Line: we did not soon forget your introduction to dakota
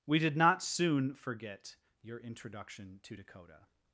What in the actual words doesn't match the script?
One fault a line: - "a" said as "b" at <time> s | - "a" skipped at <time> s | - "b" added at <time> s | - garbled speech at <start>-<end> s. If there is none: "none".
none